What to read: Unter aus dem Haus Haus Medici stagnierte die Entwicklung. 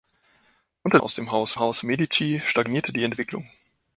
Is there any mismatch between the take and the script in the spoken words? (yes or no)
no